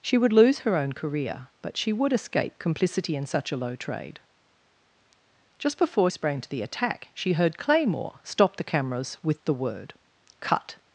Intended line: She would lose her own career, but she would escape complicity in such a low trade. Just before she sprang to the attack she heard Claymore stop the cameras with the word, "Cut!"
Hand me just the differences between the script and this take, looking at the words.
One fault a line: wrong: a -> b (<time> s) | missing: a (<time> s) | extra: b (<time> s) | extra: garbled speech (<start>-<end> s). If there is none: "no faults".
missing: she (6.1 s)